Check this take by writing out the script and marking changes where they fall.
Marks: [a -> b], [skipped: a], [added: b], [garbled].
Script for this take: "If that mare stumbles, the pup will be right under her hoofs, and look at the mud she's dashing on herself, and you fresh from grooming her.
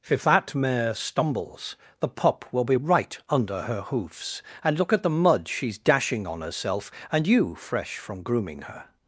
"If that mare stumbles, the pup will be right under her hoofs, and look at the mud she's dashing on herself, and you fresh from grooming her.